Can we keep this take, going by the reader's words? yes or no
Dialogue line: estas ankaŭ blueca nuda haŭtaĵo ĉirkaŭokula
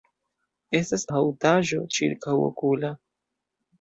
no